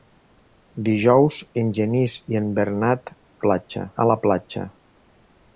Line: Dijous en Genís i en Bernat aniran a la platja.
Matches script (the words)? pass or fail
fail